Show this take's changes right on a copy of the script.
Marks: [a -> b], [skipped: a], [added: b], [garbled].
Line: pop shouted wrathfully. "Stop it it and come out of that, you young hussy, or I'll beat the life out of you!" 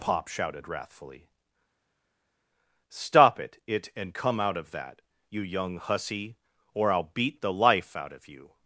pop shouted wrathfully. "Stop it it and come out of that, you young hussy, or I'll beat the life out of you!"